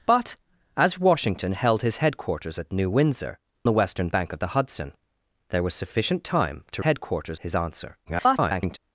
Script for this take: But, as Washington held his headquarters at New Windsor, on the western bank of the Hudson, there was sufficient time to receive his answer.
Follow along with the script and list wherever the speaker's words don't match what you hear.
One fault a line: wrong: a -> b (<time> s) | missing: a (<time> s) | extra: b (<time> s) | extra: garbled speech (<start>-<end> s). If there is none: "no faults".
missing: on (3.4 s)
wrong: receive -> headquarters (6.8 s)
extra: garbled speech (8.0-8.8 s)